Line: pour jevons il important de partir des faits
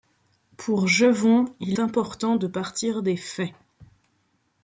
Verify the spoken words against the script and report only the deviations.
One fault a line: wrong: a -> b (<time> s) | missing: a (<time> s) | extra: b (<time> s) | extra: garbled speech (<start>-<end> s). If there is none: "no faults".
no faults